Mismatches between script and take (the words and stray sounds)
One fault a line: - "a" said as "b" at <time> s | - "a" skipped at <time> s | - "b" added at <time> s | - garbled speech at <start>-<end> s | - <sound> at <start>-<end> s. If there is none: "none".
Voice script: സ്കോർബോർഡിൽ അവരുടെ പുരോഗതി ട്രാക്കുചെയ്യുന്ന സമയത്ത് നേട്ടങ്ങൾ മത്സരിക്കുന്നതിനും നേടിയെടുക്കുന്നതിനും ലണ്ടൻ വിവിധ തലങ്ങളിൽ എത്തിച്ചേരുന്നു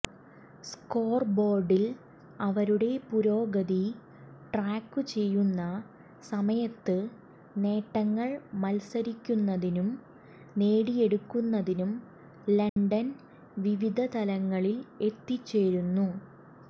- dropout at 12.7-12.8 s